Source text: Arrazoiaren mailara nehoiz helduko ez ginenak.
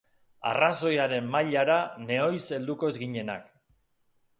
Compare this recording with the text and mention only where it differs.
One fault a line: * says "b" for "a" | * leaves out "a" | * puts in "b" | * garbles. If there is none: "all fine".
all fine